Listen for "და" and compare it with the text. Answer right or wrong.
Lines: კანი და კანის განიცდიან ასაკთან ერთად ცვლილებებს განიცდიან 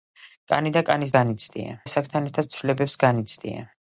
right